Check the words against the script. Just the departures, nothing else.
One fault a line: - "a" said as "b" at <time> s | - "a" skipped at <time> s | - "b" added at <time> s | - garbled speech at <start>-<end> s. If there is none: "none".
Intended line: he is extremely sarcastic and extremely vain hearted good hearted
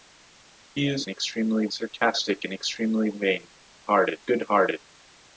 none